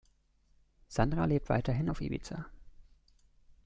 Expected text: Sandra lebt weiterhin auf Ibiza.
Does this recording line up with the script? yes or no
yes